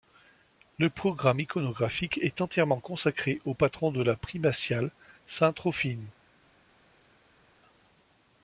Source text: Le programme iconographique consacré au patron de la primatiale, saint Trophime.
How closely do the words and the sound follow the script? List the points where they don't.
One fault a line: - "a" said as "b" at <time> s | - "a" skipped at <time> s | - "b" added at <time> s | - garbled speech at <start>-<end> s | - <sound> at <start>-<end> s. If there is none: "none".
- "est entièrement" added at 2.2 s